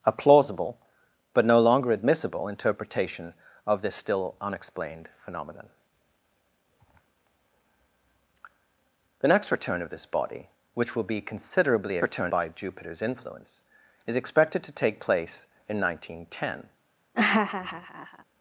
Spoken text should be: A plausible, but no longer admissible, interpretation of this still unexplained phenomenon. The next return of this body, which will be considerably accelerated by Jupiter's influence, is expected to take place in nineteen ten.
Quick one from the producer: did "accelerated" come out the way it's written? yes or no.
no